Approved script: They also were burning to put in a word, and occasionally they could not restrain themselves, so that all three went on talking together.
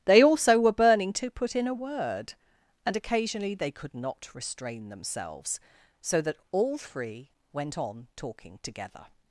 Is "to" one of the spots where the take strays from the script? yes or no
no